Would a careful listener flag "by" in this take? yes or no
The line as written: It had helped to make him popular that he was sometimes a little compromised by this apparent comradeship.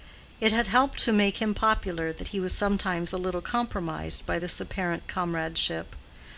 no